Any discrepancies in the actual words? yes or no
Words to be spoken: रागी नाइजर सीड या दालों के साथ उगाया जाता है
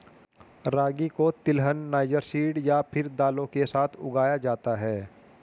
yes